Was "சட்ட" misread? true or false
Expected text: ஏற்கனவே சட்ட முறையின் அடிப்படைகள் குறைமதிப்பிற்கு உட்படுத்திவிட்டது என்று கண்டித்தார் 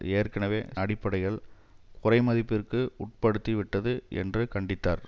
true